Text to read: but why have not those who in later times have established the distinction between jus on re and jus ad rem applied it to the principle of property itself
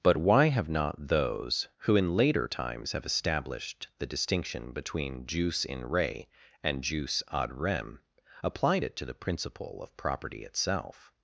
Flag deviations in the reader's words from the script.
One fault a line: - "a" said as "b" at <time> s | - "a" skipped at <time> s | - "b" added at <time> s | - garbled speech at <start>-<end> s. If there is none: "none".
- "on" said as "in" at 5.6 s